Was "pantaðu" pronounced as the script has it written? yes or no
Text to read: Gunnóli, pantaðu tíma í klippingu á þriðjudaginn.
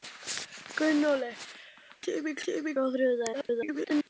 no